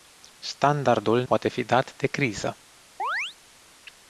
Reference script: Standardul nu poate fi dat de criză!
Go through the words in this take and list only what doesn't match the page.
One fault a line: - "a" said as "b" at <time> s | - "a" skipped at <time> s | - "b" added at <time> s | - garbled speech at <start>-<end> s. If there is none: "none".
- "nu" skipped at 1.2 s